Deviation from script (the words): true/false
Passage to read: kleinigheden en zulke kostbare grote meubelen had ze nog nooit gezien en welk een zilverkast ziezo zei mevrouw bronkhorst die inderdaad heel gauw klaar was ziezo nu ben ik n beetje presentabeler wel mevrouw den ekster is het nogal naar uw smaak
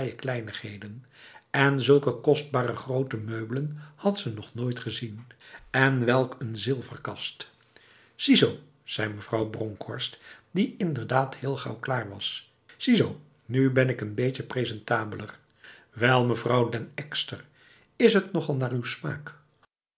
false